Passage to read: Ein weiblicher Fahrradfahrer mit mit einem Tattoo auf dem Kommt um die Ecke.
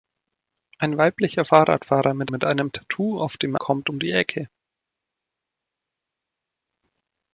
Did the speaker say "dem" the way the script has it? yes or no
yes